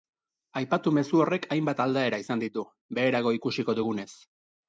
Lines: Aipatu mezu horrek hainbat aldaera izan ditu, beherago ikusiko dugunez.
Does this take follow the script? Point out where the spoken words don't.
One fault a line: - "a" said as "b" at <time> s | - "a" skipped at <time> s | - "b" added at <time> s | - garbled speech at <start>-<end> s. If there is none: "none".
none